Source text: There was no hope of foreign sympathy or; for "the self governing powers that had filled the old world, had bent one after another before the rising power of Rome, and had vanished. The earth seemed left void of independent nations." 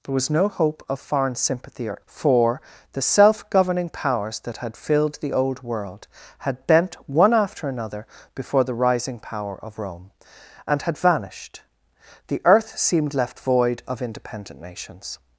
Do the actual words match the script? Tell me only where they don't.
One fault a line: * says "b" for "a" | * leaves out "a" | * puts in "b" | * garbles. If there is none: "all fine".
all fine